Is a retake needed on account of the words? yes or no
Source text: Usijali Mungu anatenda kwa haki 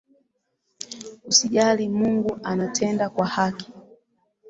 no